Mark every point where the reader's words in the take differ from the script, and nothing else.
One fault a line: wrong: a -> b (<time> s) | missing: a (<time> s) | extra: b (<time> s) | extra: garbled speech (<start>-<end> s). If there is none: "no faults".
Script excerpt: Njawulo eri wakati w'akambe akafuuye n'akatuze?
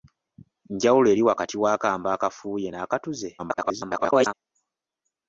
extra: garbled speech (3.4-4.3 s)